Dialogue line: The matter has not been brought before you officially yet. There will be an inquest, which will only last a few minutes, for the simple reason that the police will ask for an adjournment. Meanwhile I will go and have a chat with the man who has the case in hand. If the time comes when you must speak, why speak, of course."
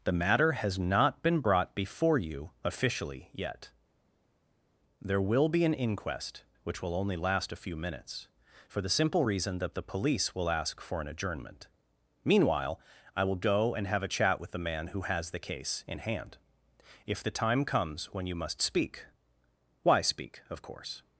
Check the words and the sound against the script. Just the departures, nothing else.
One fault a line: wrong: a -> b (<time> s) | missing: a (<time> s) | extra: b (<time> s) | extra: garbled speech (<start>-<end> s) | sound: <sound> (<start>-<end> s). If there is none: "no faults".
no faults